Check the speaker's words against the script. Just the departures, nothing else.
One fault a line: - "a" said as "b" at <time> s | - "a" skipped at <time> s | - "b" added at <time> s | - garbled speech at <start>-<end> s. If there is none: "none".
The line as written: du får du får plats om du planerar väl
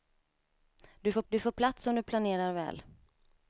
none